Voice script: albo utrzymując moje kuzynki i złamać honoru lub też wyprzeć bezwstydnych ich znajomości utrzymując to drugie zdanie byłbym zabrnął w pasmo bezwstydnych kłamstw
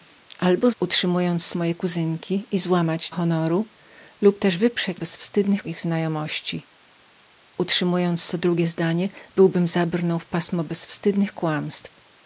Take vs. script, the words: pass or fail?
pass